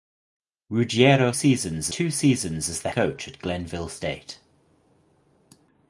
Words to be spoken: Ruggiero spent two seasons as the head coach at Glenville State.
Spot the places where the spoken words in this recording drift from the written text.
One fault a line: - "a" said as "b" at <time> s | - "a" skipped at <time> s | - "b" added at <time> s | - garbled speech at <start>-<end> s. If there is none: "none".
- "spent" said as "seasons" at 1.3 s
- "head" skipped at 2.9 s